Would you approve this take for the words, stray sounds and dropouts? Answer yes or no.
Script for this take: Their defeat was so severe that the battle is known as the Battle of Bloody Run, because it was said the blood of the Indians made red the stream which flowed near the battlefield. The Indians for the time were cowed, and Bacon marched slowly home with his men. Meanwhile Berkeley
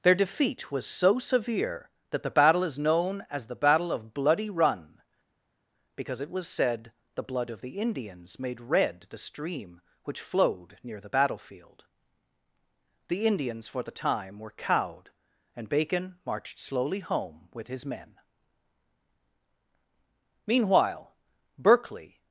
yes